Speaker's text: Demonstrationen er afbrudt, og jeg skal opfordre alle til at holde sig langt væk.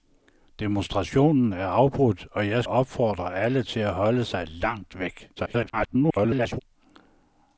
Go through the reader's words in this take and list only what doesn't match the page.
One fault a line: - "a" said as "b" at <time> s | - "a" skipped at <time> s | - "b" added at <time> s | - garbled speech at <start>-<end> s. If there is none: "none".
- "skal" skipped at 2.6 s
- garbled speech at 5.4-6.6 s